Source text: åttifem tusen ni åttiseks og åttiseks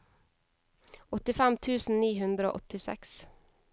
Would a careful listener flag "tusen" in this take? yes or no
no